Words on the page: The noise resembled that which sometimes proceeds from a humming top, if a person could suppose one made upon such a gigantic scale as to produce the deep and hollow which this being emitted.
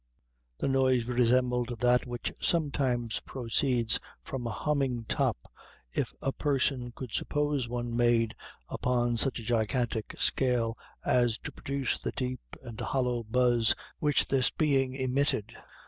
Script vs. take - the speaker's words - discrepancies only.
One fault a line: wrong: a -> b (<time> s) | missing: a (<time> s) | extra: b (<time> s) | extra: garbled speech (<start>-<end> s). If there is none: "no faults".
extra: buzz (13.2 s)